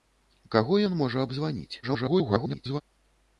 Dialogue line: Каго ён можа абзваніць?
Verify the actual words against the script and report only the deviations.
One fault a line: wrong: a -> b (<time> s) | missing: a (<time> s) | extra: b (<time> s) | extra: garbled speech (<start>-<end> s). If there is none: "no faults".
extra: garbled speech (1.8-2.8 s)